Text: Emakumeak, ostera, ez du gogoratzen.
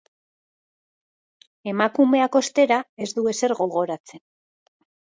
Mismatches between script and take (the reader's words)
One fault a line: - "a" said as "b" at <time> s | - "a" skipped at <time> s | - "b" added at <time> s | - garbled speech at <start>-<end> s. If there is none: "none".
- "ezer" added at 3.4 s